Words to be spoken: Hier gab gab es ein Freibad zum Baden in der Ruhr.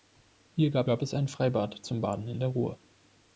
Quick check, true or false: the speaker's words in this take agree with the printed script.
true